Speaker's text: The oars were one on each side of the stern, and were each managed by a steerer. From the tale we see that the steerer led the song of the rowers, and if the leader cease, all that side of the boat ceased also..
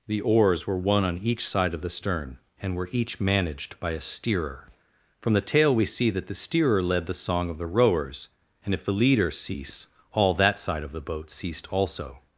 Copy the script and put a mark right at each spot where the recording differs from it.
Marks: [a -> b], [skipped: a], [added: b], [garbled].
The oars were one on each side of the stern, and were each managed by a steerer. From the tale we see that the steerer led the song of the rowers, and if the leader cease, all that side of the boat ceased also..